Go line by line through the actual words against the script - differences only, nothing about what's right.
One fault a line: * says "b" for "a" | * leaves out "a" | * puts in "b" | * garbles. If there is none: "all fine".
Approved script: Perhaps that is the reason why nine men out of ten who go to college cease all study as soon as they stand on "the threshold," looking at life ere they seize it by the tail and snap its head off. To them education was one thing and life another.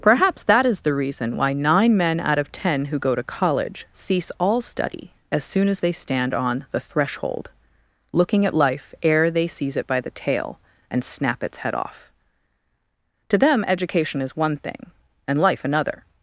* says "is" for "was"